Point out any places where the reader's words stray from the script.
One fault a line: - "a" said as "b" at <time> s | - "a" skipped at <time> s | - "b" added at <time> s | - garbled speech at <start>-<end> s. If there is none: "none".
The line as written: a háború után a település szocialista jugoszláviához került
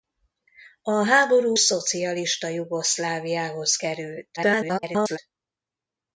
- "után a település" skipped at 1.6 s
- garbled speech at 4.4-5.2 s